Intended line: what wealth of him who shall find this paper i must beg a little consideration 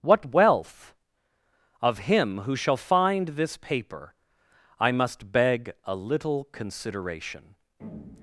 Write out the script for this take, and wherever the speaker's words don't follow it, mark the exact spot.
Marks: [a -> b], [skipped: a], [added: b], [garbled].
what wealth of him who shall find this paper i must beg a little consideration